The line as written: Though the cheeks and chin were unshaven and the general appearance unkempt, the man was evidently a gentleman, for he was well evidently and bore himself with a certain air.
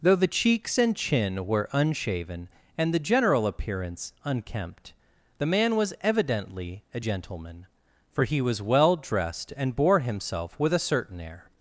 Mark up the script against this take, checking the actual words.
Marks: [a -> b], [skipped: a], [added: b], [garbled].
Though the cheeks and chin were unshaven and the general appearance unkempt, the man was evidently a gentleman, for he was well [evidently -> dressed] and bore himself with a certain air.